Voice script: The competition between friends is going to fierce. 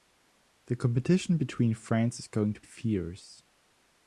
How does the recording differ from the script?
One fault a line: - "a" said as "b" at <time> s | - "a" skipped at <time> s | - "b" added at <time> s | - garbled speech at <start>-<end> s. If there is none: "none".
none